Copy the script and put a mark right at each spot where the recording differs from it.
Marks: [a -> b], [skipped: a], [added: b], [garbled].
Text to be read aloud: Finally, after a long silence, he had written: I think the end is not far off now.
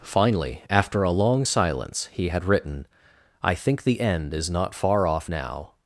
Finally, after a long silence, he had written: I think the end is not far off now.